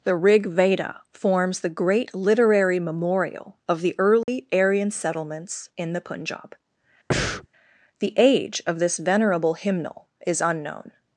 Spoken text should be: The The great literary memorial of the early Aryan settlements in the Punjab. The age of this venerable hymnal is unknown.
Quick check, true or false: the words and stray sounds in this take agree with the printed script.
false